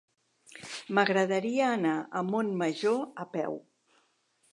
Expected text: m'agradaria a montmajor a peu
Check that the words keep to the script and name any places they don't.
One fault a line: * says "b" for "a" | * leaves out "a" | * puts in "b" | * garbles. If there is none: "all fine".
* puts in "anar"